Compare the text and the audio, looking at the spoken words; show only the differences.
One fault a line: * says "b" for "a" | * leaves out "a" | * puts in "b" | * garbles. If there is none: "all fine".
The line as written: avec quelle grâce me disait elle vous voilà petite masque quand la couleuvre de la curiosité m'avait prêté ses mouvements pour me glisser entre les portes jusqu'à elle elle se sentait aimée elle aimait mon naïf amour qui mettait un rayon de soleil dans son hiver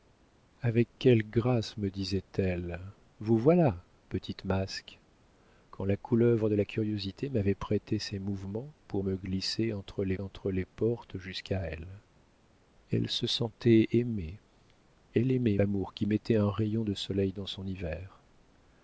* puts in "entre les"
* leaves out "mon naïf"